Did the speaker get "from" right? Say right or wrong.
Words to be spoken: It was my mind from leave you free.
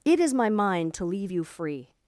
wrong